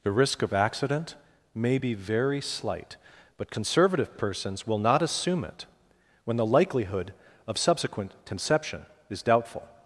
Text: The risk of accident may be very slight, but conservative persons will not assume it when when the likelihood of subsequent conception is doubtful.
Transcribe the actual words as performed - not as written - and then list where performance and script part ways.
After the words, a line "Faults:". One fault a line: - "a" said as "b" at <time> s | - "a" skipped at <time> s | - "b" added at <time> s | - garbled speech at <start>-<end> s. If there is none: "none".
The risk of accident may be very slight, but conservative persons will not assume it when the likelihood of subsequent conception is doubtful.
Faults:
- "when" skipped at 6.4 s